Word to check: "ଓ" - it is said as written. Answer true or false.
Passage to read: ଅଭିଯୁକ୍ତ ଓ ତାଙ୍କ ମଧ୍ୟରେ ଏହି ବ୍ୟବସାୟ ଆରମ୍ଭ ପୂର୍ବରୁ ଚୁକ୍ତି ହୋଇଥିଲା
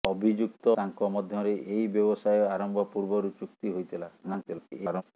false